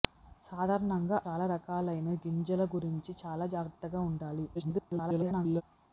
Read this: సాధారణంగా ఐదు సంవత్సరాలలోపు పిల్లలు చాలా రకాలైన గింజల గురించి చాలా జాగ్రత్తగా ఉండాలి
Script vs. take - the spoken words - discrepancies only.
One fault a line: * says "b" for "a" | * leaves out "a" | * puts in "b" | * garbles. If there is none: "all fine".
* leaves out "ఐదు సంవత్సరాలలోపు పిల్లలు"
* garbles